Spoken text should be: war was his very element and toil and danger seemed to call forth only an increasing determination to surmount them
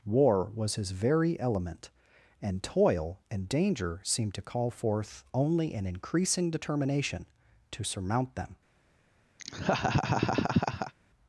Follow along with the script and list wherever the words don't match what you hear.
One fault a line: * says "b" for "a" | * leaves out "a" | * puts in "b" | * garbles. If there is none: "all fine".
all fine